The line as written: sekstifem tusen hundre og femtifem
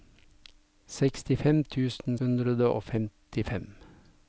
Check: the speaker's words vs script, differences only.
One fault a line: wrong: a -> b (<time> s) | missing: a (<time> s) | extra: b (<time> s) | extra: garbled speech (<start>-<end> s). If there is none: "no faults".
no faults